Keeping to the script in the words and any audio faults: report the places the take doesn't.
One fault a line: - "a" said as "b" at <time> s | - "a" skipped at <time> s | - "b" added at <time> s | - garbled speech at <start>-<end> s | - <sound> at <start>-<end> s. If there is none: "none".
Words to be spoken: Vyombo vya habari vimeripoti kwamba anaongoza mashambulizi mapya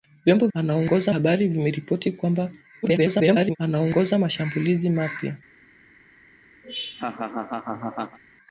- "vya" said as "anaongoza" at 0.5 s
- garbled speech at 2.8-3.6 s
- laugh at 6.6-8.2 s